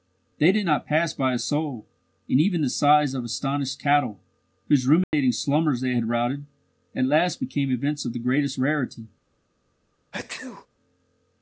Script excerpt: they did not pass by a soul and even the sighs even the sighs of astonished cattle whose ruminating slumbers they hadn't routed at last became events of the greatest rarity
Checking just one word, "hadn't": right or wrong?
wrong